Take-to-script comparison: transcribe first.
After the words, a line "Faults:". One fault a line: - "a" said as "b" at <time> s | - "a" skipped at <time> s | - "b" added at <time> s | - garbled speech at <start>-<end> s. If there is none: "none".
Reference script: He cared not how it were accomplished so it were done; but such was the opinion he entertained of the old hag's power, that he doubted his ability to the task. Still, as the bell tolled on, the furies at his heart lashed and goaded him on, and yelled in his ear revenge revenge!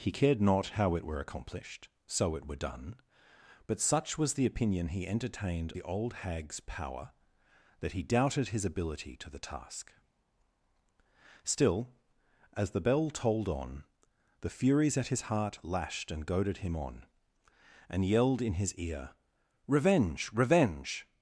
He cared not how it were accomplished so it were done; but such was the opinion he entertained the old hag's power, that he doubted his ability to the task. Still, as the bell tolled on, the furies at his heart lashed and goaded him on, and yelled in his ear revenge revenge!
Faults:
- "of" skipped at 5.7 s